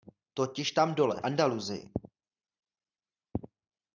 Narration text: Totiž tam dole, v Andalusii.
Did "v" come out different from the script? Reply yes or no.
yes